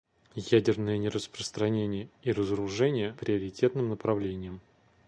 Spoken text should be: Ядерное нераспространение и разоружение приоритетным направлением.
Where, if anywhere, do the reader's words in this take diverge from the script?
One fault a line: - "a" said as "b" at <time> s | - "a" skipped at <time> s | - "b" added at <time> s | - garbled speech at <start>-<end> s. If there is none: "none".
none